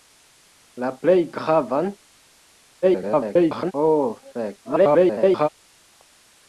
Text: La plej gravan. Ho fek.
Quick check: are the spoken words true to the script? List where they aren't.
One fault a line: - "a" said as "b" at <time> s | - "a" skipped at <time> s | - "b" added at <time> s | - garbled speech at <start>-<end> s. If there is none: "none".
- garbled speech at 2.8-3.7 s
- garbled speech at 4.6-5.5 s